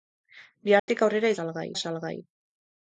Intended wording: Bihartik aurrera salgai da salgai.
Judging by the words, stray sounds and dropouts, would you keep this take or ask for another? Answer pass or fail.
fail